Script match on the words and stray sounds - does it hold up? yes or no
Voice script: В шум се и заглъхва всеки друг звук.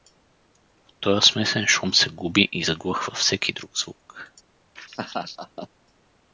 no